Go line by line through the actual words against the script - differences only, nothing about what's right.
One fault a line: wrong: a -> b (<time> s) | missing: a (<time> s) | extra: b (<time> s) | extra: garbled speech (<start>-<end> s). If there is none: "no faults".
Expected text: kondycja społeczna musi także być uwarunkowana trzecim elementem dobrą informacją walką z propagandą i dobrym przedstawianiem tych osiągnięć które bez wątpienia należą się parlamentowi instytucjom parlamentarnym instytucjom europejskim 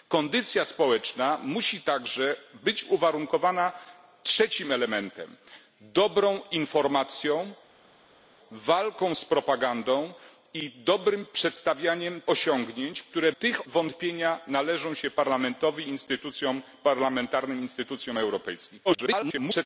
missing: tych (12.2 s)
wrong: bez -> tych (13.4 s)
extra: garbled speech (18.8-19.7 s)